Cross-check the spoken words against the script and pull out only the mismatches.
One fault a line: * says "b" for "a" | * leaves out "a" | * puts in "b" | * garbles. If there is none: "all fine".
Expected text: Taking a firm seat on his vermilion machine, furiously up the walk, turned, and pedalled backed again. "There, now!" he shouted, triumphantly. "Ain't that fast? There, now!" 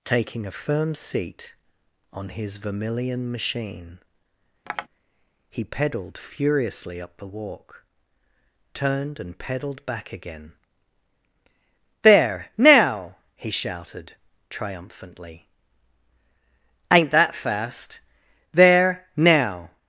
* puts in "he pedalled"
* says "back" for "backed"